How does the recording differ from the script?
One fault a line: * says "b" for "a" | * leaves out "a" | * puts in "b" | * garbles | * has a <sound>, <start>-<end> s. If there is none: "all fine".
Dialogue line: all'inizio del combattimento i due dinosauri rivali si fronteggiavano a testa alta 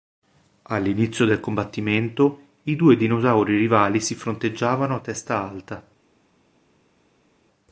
all fine